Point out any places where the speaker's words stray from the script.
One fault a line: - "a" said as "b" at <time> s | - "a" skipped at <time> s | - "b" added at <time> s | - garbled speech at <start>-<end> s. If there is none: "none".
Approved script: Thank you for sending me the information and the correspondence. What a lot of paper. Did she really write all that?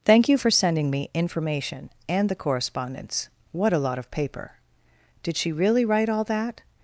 - "the" skipped at 1.1 s